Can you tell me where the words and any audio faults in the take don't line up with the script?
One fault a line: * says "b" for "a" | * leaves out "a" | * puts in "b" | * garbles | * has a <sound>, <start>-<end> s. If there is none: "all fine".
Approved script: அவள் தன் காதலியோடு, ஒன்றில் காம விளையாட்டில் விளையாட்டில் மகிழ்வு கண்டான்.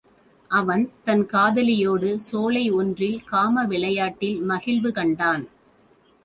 * says "அவன்" for "அவள்"
* puts in "சோலை"
* leaves out "விளையாட்டில்"